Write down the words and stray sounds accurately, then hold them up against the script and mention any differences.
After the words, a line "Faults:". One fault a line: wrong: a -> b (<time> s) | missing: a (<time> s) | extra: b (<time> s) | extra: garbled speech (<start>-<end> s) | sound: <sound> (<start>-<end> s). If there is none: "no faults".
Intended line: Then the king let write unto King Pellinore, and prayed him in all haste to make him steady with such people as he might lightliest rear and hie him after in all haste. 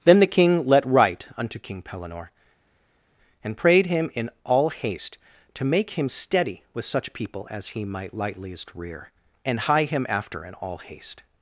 Then the king let write unto King Pellinore, and prayed him in all haste to make him steady with such people as he might lightliest rear and hie him after in all haste.
Faults:
no faults